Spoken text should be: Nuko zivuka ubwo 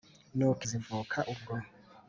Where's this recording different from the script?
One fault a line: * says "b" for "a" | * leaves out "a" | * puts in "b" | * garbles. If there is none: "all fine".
all fine